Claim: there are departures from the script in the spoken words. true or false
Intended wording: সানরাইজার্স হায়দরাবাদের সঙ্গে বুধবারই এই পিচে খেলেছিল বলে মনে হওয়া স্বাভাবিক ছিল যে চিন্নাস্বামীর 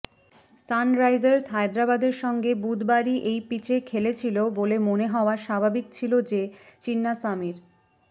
false